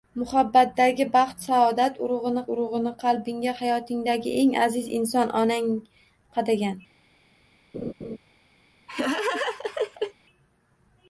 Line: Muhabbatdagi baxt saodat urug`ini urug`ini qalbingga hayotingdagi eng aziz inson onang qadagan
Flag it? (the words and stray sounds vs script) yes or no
yes